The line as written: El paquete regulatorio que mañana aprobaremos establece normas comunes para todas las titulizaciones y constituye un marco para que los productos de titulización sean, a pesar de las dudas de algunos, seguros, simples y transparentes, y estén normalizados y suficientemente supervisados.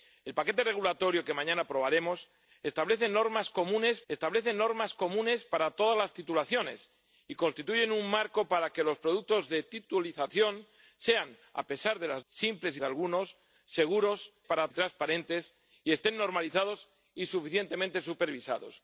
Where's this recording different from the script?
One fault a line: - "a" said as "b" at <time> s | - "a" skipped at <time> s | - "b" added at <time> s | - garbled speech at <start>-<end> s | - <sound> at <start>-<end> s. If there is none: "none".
- "establece normas comunes" added at 4.1 s
- "dudas" said as "simples" at 12.2 s
- "simples" said as "para" at 14.4 s